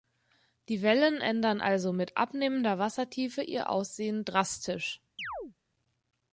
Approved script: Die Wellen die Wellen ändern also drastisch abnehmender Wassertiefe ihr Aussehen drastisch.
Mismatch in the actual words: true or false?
true